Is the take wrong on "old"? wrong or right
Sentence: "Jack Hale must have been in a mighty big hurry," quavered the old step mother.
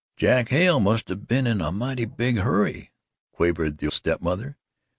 wrong